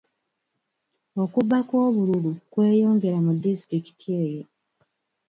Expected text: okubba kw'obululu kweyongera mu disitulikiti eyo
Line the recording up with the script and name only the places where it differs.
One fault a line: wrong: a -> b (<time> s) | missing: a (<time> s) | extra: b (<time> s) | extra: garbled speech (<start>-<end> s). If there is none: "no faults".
no faults